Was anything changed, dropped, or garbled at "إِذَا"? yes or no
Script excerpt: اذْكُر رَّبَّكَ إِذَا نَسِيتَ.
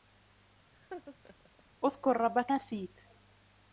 yes